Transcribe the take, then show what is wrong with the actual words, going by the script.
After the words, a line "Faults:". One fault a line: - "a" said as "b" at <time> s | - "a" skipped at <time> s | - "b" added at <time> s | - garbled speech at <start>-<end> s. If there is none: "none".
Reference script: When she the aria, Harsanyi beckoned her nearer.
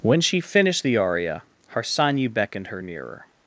When she finished the aria, Harsanyi beckoned her nearer.
Faults:
- "finished" added at 0.4 s